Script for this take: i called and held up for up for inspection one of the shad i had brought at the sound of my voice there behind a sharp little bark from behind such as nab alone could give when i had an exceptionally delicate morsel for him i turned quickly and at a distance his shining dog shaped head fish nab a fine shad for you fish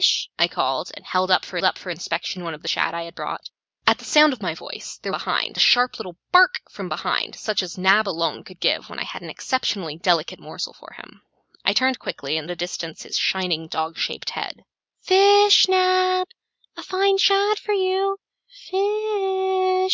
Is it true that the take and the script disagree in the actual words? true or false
false